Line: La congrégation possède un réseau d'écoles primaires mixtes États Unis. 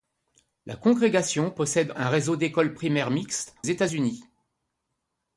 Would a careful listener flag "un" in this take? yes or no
no